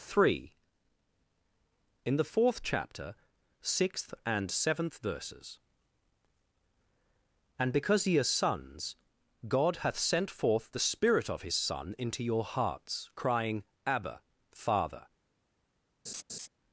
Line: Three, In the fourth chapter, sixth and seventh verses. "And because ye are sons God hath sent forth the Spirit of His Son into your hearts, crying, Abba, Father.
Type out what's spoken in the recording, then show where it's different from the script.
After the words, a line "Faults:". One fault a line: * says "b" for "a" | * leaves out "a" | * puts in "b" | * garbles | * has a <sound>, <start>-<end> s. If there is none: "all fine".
Three, In the fourth chapter, sixth and seventh verses. "And because ye are sons God hath sent forth the Spirit of His Son into your hearts, crying, Abba, Father.
Faults:
* has a laugh, 16.1-16.5 s